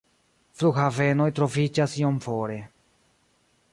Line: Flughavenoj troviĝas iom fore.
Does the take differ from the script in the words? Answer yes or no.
no